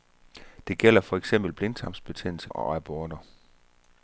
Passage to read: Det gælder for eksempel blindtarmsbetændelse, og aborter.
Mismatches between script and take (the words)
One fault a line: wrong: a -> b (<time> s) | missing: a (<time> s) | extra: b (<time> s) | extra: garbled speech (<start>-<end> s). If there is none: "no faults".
no faults